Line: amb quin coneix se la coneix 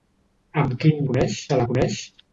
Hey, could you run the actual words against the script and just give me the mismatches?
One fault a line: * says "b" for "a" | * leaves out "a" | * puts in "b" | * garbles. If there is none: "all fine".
all fine